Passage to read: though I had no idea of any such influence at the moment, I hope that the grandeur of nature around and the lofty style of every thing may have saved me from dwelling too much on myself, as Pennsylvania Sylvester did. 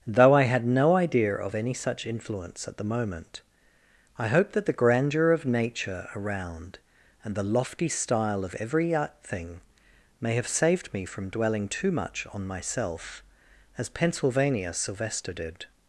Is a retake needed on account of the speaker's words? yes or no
no